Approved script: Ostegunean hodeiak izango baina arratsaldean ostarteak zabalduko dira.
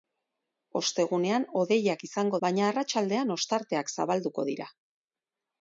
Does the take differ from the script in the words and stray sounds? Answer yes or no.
no